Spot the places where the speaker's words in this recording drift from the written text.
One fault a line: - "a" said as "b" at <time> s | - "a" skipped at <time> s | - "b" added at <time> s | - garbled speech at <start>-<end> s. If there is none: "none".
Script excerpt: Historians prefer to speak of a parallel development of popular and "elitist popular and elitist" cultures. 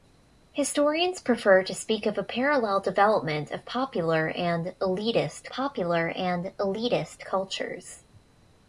none